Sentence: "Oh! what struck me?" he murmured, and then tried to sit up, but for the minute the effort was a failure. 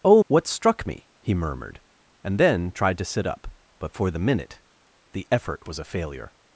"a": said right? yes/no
yes